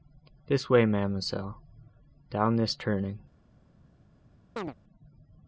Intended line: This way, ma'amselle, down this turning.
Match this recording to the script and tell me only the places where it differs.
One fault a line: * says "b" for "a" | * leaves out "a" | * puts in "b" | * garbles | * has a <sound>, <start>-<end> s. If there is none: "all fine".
* has a chirp, 4.6-4.7 s